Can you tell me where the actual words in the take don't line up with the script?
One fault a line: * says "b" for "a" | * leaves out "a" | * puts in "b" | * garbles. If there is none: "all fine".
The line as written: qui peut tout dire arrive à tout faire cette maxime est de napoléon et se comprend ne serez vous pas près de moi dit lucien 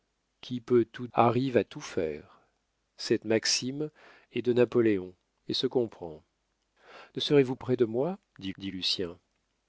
* leaves out "dire"
* leaves out "pas"
* puts in "dit"